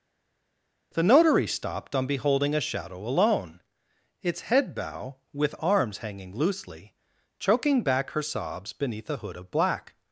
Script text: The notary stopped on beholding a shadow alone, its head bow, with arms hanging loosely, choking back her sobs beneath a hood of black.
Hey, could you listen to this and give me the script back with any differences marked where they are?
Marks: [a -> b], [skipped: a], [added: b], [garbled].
The notary stopped on beholding a shadow alone, its head bow, with arms hanging loosely, choking back her sobs beneath a hood of black.